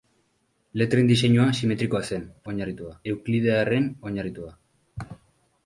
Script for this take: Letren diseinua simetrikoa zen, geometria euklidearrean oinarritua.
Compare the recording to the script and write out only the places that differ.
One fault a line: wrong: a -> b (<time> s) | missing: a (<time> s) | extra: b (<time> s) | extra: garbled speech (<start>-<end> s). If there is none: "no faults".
wrong: geometria -> oinarritua (2.5 s)